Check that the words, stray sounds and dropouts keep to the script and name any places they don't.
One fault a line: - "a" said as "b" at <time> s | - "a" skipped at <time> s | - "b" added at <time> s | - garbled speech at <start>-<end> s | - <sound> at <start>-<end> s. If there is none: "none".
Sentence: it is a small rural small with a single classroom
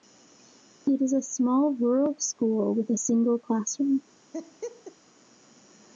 - "small" said as "school" at 2.2 s
- laugh at 4.3-5.0 s